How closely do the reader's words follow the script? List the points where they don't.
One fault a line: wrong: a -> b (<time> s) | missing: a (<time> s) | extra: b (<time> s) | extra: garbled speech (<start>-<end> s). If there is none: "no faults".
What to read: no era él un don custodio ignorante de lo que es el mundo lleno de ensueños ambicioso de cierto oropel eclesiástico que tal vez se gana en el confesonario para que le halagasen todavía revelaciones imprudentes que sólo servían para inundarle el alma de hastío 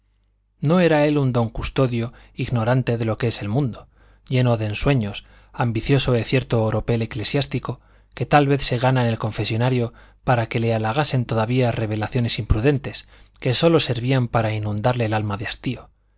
no faults